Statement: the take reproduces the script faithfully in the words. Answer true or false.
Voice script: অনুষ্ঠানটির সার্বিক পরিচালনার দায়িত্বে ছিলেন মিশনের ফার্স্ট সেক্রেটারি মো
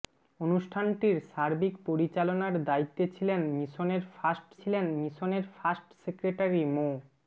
false